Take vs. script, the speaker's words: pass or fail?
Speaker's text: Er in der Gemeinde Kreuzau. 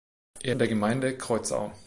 pass